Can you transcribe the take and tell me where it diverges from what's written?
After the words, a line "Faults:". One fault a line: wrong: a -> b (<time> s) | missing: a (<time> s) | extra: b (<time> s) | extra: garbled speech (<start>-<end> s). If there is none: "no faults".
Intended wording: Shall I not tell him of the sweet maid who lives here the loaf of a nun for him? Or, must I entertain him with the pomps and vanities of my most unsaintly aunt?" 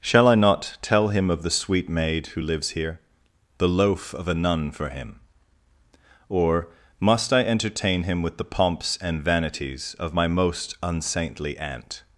Shall I not tell him of the sweet maid who lives here the loaf of a nun for him? Or, must I entertain him with the pomps and vanities of my most unsaintly aunt?"
Faults:
no faults